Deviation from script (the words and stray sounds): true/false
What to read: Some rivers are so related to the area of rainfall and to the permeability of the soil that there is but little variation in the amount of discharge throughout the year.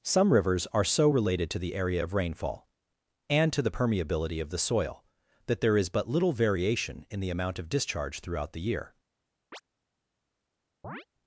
true